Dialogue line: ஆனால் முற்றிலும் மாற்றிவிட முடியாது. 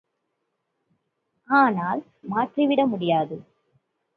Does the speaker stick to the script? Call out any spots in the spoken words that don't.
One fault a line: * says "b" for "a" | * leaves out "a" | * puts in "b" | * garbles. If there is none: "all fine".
* leaves out "முற்றிலும்"